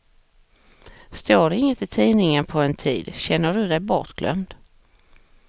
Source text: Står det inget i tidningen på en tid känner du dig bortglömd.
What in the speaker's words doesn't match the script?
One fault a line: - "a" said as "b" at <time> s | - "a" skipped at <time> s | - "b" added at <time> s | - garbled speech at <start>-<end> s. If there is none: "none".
none